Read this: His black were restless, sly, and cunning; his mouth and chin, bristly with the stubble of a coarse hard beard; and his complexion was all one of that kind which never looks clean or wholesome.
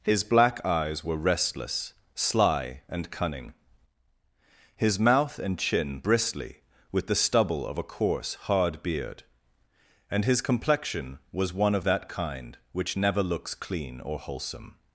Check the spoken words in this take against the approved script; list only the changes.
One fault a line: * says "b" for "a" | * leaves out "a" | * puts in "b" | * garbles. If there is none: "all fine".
* puts in "eyes"
* leaves out "all"